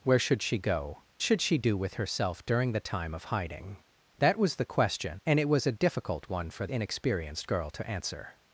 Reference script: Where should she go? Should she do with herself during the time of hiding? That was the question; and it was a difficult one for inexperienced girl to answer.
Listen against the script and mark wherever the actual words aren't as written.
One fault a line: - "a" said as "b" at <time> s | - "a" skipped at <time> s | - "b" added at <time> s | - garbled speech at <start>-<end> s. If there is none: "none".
none